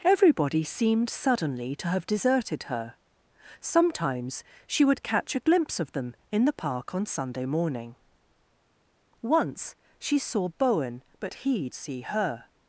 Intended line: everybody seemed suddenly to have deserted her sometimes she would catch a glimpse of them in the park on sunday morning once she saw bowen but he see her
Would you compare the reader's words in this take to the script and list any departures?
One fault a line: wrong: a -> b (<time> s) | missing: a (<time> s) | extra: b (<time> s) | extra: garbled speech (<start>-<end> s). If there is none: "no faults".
no faults